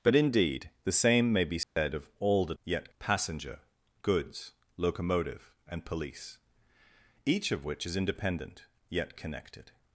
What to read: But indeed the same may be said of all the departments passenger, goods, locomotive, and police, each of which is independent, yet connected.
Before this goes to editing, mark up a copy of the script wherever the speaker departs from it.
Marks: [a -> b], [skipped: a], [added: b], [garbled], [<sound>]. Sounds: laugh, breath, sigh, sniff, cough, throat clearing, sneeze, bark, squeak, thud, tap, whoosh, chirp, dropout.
But indeed the same may be said [dropout] of all the [departments -> yet] passenger, goods, locomotive, and police, each of which is independent, yet connected.